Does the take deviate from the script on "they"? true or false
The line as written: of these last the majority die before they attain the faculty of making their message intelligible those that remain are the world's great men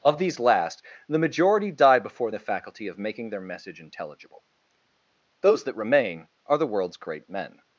true